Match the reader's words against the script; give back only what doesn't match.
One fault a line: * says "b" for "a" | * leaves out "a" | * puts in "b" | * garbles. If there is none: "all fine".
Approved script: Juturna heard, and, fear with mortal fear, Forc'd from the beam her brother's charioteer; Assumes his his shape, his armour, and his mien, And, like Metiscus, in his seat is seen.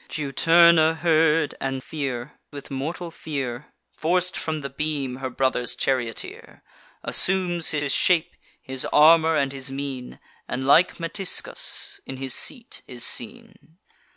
all fine